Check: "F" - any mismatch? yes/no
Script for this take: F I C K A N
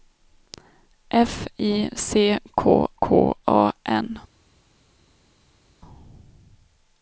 no